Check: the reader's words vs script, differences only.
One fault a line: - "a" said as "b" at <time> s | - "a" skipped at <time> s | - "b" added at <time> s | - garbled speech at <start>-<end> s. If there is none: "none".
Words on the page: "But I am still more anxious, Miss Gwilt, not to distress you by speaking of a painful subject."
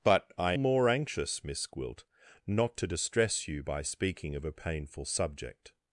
- "am still" skipped at 0.5 s